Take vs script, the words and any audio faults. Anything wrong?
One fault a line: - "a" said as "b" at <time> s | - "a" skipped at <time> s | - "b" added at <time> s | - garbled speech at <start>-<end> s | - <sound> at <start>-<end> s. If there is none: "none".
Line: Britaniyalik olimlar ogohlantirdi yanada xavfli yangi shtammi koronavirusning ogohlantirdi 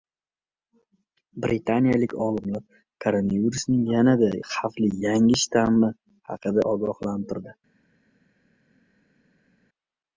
- "ogohlantirdi" said as "koronavirusning" at 3.0 s
- "koronavirusning" said as "haqida" at 6.3 s